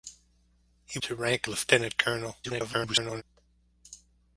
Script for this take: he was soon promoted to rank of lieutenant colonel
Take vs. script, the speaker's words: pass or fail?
fail